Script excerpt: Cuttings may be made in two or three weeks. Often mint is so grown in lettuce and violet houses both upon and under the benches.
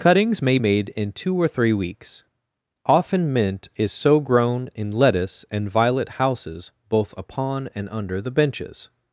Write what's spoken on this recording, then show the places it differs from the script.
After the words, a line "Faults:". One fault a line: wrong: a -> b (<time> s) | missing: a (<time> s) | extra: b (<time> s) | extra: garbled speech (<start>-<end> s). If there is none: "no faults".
Cuttings may made in two or three weeks. Often mint is so grown in lettuce and violet houses both upon and under the benches.
Faults:
missing: be (0.6 s)